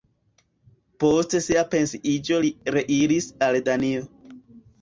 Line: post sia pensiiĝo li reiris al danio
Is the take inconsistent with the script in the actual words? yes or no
no